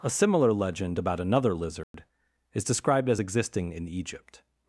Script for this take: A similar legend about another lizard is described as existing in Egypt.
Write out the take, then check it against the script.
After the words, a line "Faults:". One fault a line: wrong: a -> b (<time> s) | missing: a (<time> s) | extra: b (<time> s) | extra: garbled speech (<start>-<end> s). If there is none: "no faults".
A similar legend about another lizard is described as existing in Egypt.
Faults:
no faults